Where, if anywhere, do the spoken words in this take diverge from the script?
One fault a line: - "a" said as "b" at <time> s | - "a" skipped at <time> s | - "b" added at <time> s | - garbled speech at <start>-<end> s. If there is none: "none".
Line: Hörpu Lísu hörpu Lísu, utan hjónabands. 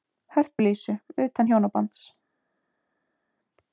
- "hörpu Lísu" skipped at 1.0 s